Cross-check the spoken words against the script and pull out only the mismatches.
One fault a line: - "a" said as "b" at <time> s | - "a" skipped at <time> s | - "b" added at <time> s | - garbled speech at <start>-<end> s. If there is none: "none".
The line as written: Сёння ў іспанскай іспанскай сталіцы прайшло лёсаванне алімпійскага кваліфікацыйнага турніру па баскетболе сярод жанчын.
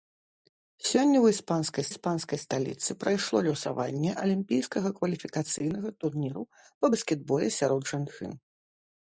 none